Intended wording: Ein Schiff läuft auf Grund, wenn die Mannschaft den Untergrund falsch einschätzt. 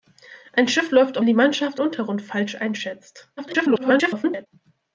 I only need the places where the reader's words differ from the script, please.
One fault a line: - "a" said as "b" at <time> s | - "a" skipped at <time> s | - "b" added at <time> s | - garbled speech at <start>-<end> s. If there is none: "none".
- "auf Grund wenn" skipped at 1.2 s
- "den" skipped at 1.8 s
- garbled speech at 3.4-4.5 s